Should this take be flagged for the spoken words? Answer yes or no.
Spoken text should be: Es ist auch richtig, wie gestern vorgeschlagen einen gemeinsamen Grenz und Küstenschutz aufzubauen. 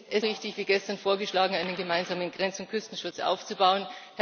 yes